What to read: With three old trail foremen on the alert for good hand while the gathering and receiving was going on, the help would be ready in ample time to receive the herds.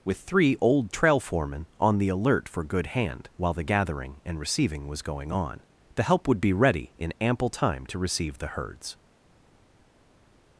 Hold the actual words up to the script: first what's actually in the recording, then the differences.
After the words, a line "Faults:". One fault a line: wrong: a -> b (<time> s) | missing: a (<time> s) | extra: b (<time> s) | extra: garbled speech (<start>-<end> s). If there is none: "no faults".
With three old trail foremen on the alert for good hand while the gathering and receiving was going on, the help would be ready in ample time to receive the herds.
Faults:
no faults